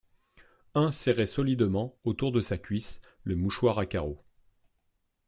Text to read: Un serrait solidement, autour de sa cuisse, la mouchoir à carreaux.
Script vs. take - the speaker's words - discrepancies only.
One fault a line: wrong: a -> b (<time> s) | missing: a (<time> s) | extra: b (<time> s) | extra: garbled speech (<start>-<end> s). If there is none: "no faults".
wrong: la -> le (3.2 s)